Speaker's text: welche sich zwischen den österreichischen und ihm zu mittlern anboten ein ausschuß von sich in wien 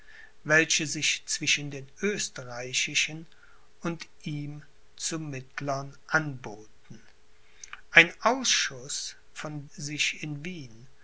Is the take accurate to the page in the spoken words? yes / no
yes